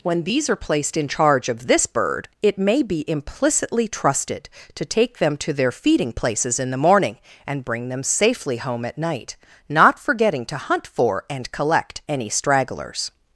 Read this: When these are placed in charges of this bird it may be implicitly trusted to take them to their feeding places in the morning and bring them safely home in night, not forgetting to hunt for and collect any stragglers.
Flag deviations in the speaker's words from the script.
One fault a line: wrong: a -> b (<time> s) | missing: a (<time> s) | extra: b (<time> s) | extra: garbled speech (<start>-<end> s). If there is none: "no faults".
wrong: charges -> charge (1.1 s)
wrong: in -> at (8.8 s)